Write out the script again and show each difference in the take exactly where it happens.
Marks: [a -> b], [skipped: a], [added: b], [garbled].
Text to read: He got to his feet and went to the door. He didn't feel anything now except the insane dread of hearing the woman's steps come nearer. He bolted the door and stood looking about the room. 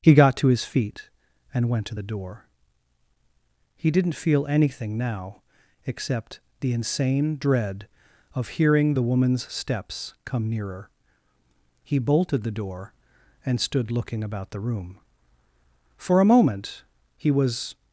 He got to his feet and went to the door. He didn't feel anything now except the insane dread of hearing the woman's steps come nearer. He bolted the door and stood looking about the room. [added: For a moment he was]